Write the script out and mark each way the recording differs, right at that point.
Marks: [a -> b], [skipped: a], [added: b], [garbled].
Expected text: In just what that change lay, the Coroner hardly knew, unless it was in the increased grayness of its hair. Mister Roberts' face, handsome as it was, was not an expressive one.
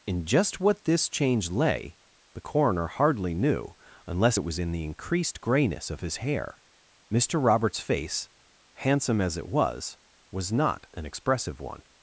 In just what [that -> this] change lay, the Coroner hardly knew, unless it was in the increased grayness of [its -> his] hair. Mister Roberts' face, handsome as it was, was not an expressive one.